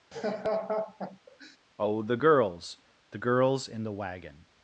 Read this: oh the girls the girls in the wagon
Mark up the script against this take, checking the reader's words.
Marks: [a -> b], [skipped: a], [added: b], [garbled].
oh the girls the girls in the wagon